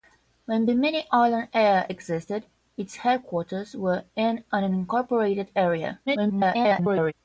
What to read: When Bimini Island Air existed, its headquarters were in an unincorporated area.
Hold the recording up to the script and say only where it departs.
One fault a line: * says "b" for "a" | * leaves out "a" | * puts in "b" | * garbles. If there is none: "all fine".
* garbles